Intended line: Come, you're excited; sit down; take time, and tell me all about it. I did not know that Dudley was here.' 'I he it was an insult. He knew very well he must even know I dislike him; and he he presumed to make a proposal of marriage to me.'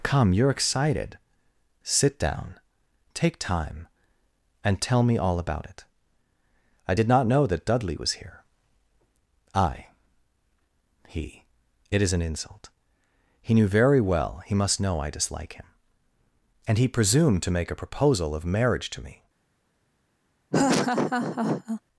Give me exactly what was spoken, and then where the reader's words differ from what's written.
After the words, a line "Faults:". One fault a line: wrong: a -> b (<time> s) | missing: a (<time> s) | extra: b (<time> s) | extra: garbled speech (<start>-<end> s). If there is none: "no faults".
Come, you're excited; sit down; take time, and tell me all about it. I did not know that Dudley was here.' 'I he it is an insult. He knew very well he must know I dislike him; and he presumed to make a proposal of marriage to me.'
Faults:
wrong: was -> is (12.0 s)
missing: even (14.8 s)
missing: he (16.9 s)